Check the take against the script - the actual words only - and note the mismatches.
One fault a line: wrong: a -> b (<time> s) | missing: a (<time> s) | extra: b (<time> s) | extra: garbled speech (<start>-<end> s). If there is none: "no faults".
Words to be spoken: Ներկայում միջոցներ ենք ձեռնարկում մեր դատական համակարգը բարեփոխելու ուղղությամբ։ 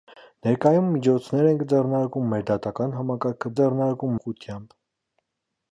wrong: բարեփոխելու -> ձեռնարկում (3.6 s)